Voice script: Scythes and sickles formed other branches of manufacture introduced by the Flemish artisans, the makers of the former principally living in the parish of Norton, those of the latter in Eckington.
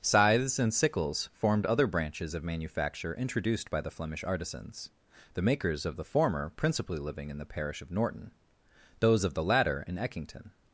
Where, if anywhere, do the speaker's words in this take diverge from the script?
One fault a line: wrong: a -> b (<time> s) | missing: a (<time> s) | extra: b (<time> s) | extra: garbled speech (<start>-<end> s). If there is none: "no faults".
no faults